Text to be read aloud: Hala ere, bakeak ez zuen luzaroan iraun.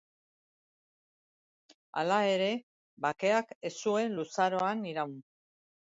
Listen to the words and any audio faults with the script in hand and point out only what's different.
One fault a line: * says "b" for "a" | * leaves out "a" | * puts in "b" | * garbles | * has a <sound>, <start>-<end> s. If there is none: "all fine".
all fine